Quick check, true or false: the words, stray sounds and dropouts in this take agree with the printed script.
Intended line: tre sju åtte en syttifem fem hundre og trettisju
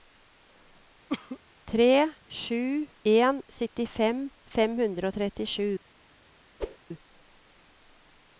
false